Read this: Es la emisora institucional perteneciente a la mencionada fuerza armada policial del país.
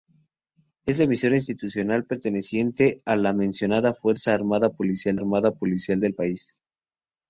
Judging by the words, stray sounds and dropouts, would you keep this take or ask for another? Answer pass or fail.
fail